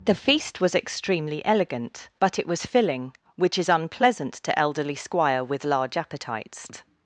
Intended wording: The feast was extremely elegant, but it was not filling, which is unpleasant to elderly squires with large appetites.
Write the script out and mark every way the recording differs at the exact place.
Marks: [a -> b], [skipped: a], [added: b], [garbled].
The feast was extremely elegant, but it was [skipped: not] filling, which is unpleasant to elderly [squires -> squire] with large appetites.